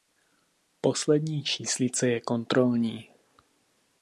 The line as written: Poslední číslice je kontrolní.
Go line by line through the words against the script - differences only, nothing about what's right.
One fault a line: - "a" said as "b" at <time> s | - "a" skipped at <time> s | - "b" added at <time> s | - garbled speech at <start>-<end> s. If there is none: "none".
none